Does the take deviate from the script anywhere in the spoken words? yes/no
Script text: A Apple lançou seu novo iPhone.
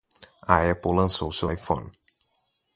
yes